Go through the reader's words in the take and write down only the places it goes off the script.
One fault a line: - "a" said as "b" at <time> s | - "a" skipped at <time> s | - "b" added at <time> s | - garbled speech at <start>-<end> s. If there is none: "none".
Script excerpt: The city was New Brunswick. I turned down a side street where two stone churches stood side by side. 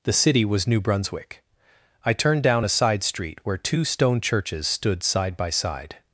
none